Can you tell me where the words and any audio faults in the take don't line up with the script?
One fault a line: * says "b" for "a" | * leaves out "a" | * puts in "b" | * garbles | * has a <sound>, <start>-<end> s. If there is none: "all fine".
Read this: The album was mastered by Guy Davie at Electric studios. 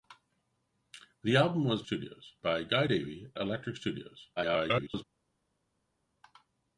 * says "studios" for "mastered"
* leaves out "at"
* garbles